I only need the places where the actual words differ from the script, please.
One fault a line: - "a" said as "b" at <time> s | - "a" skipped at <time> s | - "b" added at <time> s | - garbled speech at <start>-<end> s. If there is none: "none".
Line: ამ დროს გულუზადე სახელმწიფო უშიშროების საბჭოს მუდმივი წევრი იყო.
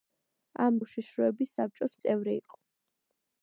- "დროს გულუზადე სახელმწიფო" skipped at 0.8 s
- "მუდმივი" skipped at 2.0 s